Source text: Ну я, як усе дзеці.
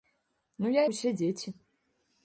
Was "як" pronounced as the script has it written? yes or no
no